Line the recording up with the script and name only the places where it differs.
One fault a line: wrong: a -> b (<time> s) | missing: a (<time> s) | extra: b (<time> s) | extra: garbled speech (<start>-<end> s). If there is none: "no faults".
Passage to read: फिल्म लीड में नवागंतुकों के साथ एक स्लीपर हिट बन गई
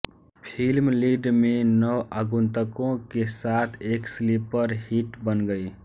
no faults